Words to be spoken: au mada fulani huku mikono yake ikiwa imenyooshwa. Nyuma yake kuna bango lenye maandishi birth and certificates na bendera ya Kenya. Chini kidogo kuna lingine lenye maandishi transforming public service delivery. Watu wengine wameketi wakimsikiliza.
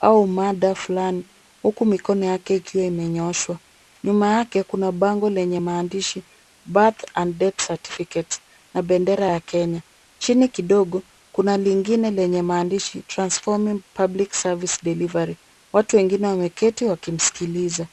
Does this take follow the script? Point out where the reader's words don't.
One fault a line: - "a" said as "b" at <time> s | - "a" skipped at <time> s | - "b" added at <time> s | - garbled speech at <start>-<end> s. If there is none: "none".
- "death" added at 7.4 s